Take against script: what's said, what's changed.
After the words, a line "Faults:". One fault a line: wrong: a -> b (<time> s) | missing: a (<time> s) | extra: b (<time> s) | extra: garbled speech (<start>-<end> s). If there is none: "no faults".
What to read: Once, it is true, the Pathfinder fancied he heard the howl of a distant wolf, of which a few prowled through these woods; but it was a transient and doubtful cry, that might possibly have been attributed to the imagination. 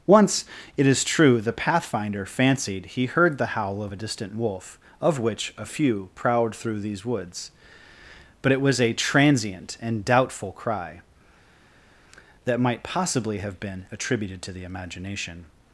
Once, it is true, the Pathfinder fancied he heard the howl of a distant wolf, of which a few prowled through these woods; but it was a transient and doubtful cry, that might possibly have been attributed to the imagination.
Faults:
no faults